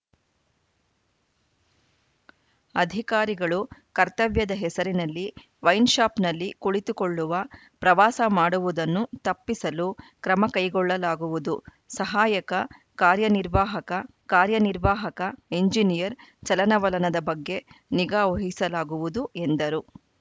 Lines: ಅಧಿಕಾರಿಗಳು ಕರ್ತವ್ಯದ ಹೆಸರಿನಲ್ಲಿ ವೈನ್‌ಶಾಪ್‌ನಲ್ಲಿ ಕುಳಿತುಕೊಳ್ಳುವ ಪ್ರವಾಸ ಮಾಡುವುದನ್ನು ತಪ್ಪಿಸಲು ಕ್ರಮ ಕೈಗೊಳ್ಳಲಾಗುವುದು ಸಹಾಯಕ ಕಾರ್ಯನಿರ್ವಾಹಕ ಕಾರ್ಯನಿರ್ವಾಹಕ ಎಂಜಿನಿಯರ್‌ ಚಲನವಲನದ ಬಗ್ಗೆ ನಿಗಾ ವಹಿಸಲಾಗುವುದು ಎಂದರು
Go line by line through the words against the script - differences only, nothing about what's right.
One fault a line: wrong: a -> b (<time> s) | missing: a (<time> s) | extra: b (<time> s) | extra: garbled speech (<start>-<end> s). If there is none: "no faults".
no faults